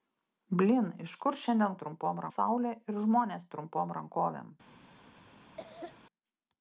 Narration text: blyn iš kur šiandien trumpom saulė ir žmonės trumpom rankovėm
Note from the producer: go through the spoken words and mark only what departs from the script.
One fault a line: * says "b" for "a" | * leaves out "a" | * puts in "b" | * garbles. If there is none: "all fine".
all fine